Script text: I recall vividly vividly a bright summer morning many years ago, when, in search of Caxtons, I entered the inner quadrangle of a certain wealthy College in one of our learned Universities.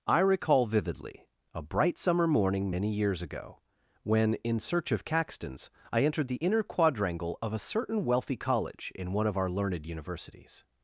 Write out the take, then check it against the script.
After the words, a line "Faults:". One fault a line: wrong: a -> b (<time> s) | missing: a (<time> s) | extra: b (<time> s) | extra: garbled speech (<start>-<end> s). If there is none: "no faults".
I recall vividly a bright summer morning many years ago, when, in search of Caxtons, I entered the inner quadrangle of a certain wealthy College in one of our learned Universities.
Faults:
missing: vividly (1.3 s)